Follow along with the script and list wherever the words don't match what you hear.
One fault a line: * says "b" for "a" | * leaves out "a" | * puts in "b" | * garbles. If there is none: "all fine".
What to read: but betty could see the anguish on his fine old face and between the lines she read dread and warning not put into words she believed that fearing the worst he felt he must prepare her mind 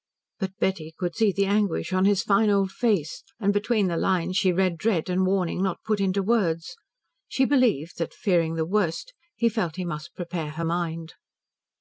all fine